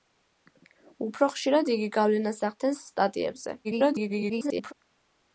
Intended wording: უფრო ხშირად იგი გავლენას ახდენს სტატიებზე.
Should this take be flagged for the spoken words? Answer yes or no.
yes